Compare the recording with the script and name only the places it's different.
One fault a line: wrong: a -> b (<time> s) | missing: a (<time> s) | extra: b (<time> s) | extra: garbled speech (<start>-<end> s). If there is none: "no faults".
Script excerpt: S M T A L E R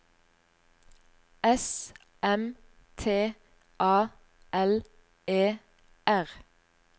no faults